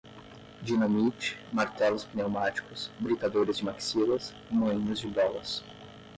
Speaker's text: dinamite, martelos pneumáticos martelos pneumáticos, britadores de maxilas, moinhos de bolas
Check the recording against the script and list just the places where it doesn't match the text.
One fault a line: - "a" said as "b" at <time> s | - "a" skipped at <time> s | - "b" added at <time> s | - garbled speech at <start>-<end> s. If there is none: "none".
- "martelos pneumáticos" skipped at 2.9 s